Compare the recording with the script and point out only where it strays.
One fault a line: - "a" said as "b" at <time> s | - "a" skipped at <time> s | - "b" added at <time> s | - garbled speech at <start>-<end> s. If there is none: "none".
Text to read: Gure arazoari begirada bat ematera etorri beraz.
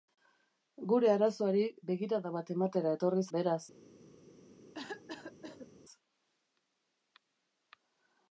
none